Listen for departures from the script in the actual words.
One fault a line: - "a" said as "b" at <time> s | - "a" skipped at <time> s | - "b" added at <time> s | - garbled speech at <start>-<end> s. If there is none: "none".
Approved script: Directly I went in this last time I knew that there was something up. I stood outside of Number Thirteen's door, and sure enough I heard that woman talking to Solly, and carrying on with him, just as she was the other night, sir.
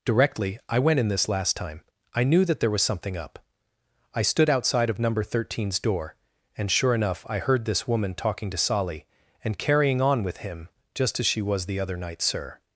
- "that" said as "this" at 7.7 s